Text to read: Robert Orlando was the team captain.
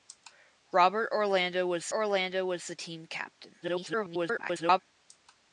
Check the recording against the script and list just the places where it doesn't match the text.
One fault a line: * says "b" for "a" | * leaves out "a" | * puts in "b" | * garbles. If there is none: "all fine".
* puts in "Orlando was"
* garbles